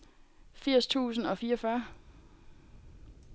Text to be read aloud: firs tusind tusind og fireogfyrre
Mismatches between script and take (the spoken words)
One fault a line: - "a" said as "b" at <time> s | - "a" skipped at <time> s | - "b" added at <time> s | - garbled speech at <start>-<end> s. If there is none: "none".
- "tusind" skipped at 1.3 s